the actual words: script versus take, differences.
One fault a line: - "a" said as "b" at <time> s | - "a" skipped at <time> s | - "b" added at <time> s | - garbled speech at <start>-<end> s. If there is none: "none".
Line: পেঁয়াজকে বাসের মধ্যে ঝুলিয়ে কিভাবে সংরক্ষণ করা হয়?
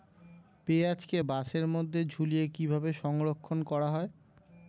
none